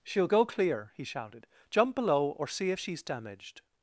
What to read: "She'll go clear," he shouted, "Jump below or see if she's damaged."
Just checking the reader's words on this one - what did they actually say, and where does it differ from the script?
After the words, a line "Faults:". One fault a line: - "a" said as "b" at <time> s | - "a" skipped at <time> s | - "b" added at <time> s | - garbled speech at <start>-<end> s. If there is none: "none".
"She'll go clear," he shouted, "Jump below or see if she's damaged."
Faults:
none